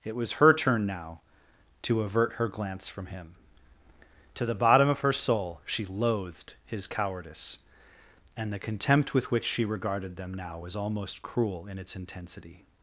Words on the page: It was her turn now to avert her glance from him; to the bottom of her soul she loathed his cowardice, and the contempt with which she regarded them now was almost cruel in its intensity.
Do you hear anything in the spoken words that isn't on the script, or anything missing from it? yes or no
no